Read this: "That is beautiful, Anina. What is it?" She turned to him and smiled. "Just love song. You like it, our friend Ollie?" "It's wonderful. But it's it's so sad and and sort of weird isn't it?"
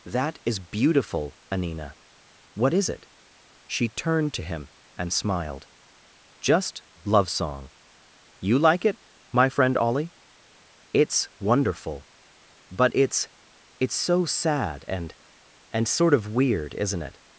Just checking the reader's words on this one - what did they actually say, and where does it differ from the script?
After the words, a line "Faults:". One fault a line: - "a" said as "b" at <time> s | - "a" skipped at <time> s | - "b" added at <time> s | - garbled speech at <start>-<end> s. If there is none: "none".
"That is beautiful, Anina. What is it?" She turned to him and smiled. "Just love song. You like it, my friend Ollie?" "It's wonderful. But it's it's so sad and and sort of weird isn't it?"
Faults:
- "our" said as "my" at 9.3 s